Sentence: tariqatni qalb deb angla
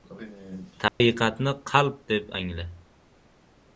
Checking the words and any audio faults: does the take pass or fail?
fail